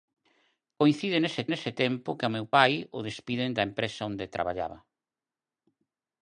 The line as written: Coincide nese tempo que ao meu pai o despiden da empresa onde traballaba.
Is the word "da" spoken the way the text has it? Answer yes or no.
yes